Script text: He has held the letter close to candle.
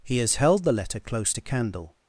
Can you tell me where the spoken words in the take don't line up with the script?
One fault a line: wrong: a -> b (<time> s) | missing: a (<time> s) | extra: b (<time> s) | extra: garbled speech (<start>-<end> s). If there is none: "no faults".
no faults